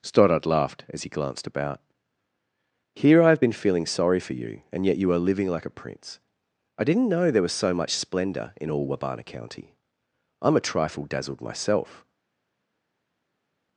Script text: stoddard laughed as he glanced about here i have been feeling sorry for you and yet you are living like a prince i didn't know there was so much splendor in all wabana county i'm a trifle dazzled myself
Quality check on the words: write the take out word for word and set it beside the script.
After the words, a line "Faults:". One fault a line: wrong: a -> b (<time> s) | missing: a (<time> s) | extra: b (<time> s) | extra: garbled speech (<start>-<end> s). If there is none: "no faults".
stoddard laughed as he glanced about here i have been feeling sorry for you and yet you are living like a prince i didn't know there was so much splendor in all wabana county i'm a trifle dazzled myself
Faults:
no faults